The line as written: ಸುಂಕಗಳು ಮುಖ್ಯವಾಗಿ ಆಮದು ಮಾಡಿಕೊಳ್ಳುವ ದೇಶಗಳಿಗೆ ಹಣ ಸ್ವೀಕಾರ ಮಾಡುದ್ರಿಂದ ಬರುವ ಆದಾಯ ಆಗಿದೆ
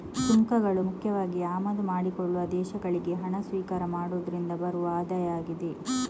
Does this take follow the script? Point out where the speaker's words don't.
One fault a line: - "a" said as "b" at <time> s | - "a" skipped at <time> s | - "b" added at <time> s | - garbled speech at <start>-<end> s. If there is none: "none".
none